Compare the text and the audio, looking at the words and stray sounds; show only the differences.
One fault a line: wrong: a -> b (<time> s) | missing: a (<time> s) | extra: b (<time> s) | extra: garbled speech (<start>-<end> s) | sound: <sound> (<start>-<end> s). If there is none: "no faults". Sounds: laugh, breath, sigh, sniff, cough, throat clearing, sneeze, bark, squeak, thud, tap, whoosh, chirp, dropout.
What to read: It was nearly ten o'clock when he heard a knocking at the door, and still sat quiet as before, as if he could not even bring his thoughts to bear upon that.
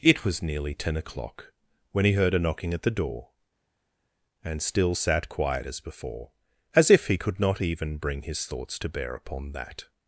no faults